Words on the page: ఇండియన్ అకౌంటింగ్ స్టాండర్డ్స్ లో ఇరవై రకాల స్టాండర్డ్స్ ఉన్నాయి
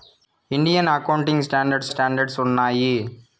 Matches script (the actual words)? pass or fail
fail